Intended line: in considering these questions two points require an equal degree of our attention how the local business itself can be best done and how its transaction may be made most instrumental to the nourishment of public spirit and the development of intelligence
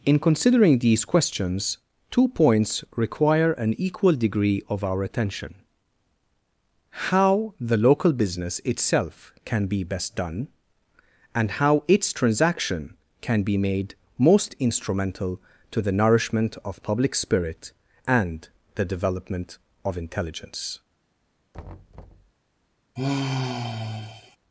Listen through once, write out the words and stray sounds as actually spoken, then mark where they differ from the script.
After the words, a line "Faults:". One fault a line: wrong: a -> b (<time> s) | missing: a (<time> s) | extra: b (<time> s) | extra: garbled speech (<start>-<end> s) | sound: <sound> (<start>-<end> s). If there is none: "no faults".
in considering these questions two points require an equal degree of our attention how the local business itself can be best done and how its transaction can be made most instrumental to the nourishment of public spirit and the development of intelligence
Faults:
wrong: may -> can (13.2 s)
sound: thud (21.5-22.3 s)
sound: sigh (23.0-24.4 s)